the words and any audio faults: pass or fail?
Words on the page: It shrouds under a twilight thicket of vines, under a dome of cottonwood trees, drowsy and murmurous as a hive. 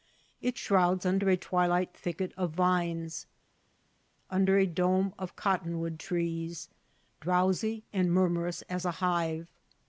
pass